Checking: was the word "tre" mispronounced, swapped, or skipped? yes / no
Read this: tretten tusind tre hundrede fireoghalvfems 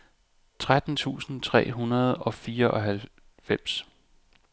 no